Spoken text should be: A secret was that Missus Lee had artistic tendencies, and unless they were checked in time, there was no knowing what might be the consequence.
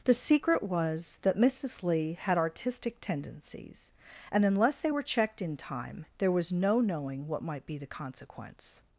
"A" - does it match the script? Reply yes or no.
no